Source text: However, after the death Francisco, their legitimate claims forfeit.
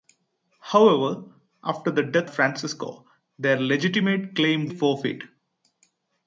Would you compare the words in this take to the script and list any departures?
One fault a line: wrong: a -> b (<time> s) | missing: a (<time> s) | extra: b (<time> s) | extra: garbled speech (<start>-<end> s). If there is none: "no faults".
no faults